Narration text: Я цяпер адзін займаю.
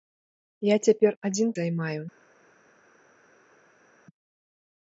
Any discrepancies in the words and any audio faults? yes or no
no